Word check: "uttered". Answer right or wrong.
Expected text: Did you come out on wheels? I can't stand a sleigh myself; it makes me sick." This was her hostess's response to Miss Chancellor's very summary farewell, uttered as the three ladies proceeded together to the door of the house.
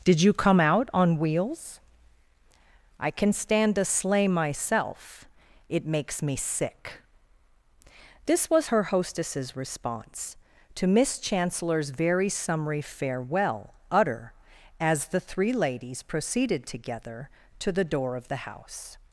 wrong